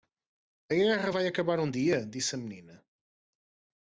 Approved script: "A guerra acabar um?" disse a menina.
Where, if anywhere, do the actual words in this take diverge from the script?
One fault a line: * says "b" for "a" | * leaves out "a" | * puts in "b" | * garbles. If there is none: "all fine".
* puts in "vai"
* puts in "dia"